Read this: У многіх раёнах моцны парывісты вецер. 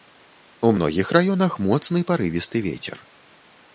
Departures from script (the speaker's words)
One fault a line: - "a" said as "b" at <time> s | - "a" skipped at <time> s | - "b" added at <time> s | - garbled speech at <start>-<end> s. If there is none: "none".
none